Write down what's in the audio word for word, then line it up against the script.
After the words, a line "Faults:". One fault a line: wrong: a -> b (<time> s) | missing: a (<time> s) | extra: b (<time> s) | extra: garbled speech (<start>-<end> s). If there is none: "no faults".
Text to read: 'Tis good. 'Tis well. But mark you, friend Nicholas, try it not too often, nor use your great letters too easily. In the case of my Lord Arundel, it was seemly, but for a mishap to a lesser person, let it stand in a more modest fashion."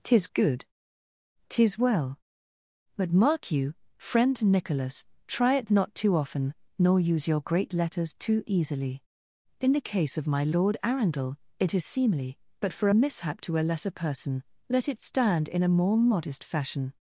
'Tis good. 'Tis well. But mark you, friend Nicholas, try it not too often, nor use your great letters too easily. In the case of my Lord Arundel, it is seemly, but for a mishap to a lesser person, let it stand in a more modest fashion."
Faults:
wrong: was -> is (11.7 s)